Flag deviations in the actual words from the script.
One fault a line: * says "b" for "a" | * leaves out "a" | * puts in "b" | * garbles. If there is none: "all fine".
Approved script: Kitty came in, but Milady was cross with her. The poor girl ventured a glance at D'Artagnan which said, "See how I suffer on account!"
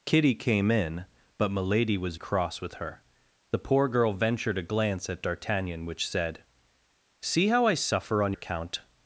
all fine